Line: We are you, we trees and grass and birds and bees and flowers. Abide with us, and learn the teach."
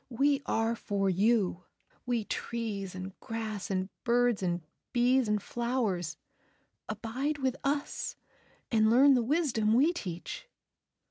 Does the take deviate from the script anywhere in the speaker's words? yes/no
yes